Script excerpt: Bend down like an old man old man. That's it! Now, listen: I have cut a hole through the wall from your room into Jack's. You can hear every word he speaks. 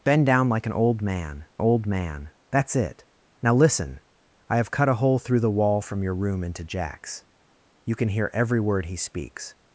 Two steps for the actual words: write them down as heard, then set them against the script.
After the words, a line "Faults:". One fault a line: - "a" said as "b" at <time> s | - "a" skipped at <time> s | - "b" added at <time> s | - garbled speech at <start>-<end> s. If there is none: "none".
Bend down like an old man old man. That's it! Now, listen: I have cut a hole through the wall from your room into Jack's. You can hear every word he speaks.
Faults:
none